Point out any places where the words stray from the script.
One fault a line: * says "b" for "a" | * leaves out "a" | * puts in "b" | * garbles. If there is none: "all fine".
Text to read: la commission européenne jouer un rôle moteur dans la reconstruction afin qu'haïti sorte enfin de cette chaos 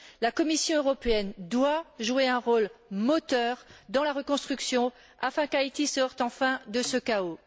* puts in "doit"
* says "ce" for "cette"